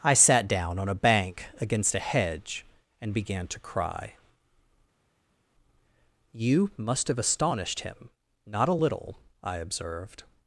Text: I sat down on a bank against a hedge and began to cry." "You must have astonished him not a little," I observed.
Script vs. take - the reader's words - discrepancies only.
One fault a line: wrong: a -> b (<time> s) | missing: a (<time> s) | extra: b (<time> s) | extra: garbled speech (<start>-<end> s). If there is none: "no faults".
no faults